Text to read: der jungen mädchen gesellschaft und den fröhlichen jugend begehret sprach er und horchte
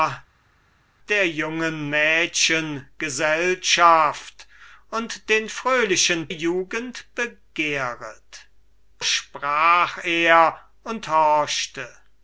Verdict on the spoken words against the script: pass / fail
pass